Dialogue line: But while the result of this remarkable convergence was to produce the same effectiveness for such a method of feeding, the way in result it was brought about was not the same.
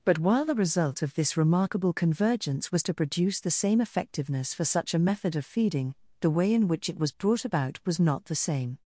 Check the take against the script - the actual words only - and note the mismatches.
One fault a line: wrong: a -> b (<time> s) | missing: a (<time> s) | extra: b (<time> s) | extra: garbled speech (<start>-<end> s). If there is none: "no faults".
wrong: result -> which (6.7 s)